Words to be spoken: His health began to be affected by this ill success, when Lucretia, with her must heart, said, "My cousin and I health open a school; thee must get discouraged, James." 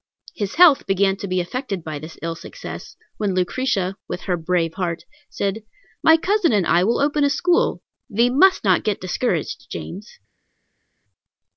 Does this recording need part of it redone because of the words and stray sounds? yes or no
yes